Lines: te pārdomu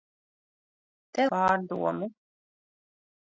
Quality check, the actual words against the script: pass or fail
pass